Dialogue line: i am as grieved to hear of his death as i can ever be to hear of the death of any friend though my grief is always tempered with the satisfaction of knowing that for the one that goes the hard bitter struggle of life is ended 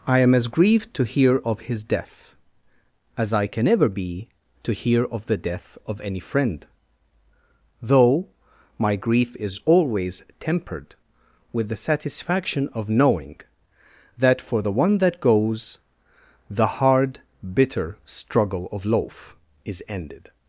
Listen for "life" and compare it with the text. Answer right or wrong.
wrong